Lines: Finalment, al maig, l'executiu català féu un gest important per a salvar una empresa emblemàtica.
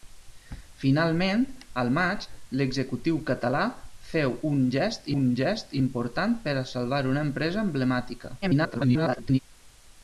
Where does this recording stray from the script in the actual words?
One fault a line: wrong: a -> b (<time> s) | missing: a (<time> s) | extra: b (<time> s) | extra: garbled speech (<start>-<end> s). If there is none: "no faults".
extra: un gest (5.2 s)
extra: garbled speech (8.4-9.4 s)